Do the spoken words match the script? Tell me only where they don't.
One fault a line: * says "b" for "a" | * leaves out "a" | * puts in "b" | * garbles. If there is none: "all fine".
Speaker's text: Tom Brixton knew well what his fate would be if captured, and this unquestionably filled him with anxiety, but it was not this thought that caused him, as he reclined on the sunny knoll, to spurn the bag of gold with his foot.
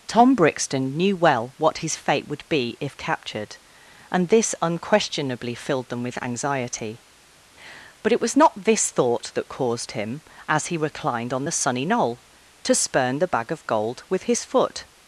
* says "them" for "him"